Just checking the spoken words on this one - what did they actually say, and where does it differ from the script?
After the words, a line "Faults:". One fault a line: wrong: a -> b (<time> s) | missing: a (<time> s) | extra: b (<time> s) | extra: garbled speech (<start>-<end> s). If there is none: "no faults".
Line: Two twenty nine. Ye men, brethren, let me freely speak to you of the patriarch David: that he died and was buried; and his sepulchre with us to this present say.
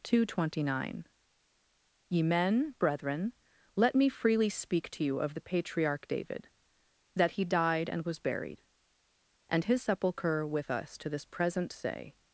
Two twenty nine. Ye men, brethren, let me freely speak to you of the patriarch David: that he died and was buried; and his sepulchre with us to this present say.
Faults:
no faults